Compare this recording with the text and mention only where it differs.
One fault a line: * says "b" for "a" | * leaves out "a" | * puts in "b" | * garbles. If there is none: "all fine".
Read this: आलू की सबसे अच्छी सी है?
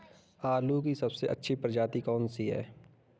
* puts in "प्रजाति कौन"